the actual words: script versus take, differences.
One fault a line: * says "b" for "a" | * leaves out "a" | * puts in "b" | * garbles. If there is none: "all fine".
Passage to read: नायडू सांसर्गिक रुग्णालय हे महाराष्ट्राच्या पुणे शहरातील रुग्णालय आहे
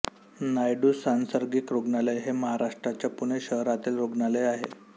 all fine